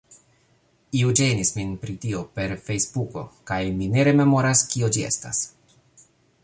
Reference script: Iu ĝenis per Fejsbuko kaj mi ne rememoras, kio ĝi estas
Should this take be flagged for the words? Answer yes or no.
yes